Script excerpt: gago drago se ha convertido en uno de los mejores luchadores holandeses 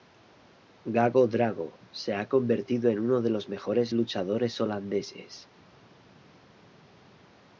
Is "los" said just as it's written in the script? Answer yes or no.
yes